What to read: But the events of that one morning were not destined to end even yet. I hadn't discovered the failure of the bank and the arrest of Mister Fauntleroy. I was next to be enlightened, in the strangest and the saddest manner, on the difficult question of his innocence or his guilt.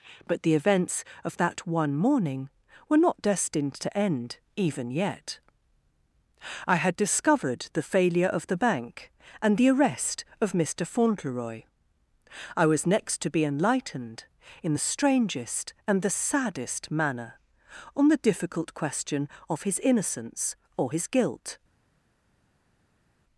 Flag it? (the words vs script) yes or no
yes